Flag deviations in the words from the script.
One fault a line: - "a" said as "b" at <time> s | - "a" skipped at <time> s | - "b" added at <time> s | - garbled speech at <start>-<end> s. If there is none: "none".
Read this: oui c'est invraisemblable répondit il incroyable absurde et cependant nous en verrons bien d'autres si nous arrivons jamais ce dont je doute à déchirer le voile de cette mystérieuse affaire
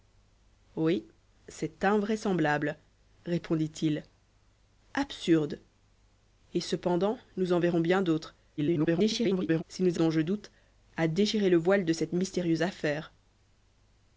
- "incroyable" skipped at 4.0 s
- garbled speech at 8.6-9.6 s
- "arrivons jamais ce" skipped at 10.0 s